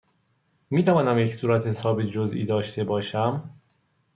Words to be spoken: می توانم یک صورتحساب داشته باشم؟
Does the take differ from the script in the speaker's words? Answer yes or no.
yes